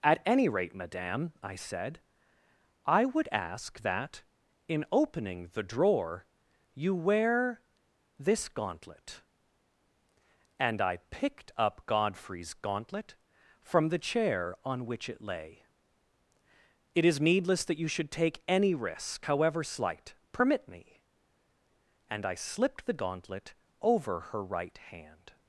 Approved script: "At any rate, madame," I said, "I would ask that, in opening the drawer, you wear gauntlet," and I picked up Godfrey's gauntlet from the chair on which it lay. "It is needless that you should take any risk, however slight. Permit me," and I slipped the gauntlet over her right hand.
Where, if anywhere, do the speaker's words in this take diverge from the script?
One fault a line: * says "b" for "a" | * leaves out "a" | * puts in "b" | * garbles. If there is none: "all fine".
* puts in "this"